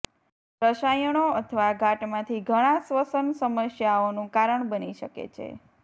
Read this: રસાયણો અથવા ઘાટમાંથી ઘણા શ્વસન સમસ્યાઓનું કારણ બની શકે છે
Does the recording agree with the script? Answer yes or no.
yes